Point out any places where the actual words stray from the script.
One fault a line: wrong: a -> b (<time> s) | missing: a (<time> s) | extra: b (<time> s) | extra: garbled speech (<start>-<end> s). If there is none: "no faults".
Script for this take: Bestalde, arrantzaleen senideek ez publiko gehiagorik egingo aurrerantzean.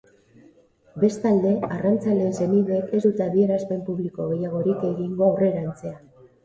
extra: dute adierazpen (3.1 s)